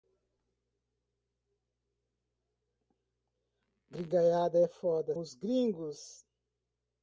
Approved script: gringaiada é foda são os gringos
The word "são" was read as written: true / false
false